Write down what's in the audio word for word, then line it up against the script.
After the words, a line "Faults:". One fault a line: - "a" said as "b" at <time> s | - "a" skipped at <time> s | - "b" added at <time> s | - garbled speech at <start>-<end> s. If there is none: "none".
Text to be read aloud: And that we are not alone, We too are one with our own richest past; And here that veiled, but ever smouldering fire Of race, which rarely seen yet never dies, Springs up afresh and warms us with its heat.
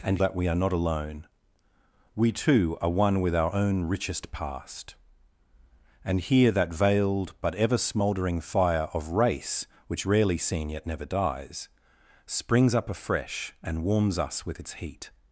And that we are not alone, We too are one with our own richest past; And here that veiled, but ever smouldering fire Of race, which rarely seen yet never dies, Springs up afresh and warms us with its heat.
Faults:
none